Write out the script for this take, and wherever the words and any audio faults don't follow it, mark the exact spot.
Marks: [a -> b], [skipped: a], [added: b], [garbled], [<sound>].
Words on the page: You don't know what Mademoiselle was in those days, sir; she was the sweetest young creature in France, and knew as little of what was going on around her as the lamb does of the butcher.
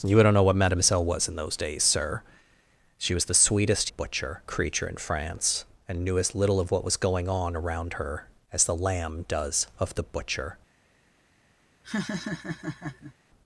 You don't know what Mademoiselle was in those days, sir; she was the sweetest [young -> butcher] creature in France, and knew as little of what was going on around her as the lamb does of the butcher. [laugh]